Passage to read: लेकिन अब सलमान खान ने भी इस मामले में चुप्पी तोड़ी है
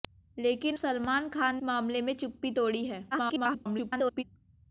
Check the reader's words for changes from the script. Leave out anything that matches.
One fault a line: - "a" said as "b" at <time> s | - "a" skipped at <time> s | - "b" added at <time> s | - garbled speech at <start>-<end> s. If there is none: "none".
- "अब" skipped at 0.8 s
- "ने भी इस" skipped at 1.6 s
- garbled speech at 3.1-4.2 s